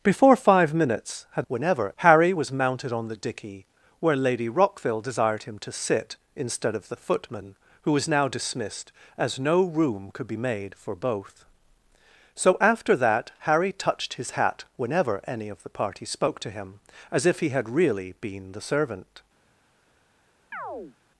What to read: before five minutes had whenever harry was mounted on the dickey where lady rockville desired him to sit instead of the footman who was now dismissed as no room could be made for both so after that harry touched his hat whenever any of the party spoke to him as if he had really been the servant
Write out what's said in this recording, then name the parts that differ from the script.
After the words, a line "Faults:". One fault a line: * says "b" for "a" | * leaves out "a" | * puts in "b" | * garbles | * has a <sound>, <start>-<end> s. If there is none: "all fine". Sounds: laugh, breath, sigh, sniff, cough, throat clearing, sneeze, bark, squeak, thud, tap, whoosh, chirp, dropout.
before five minutes had whenever harry was mounted on the dickey where lady rockville desired him to sit instead of the footman who was now dismissed as no room could be made for both so after that harry touched his hat whenever any of the party spoke to him as if he had really been the servant
Faults:
* has a chirp, 20.5-21.0 s